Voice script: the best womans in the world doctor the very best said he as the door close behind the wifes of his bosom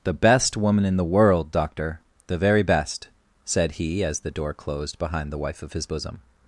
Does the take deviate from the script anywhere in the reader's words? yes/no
yes